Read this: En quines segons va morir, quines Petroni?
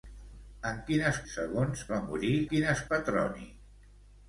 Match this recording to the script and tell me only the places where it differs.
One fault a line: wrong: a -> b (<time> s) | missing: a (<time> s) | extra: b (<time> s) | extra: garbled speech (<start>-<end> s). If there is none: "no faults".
no faults